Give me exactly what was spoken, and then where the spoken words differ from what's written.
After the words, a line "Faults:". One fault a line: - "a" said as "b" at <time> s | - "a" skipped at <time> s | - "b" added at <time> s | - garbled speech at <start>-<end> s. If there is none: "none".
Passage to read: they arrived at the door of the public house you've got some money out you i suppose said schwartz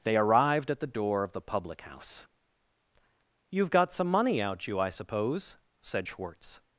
they arrived at the door of the public house you've got some money out you i suppose said schwartz
Faults:
none